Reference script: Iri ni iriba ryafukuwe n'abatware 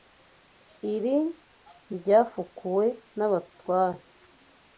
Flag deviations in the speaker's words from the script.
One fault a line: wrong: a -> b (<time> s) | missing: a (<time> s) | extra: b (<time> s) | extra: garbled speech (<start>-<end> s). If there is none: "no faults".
missing: ni iriba (1.2 s)